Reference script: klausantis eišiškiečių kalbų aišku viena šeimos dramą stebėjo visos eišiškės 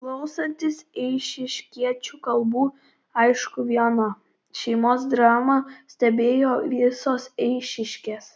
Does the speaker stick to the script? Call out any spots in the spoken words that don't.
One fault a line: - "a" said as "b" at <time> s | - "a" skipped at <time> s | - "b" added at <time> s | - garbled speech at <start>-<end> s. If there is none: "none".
none